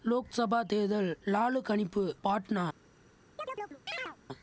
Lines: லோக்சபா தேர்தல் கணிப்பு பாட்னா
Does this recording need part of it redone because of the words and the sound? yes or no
yes